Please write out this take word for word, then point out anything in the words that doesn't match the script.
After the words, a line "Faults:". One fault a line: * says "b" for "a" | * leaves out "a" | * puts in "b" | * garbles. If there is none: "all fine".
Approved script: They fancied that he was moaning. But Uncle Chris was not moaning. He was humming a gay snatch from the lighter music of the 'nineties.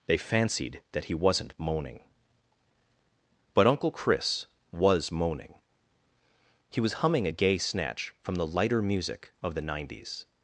They fancied that he wasn't moaning. But Uncle Chris was moaning. He was humming a gay snatch from the lighter music of the 'nineties.
Faults:
* says "wasn't" for "was"
* leaves out "not"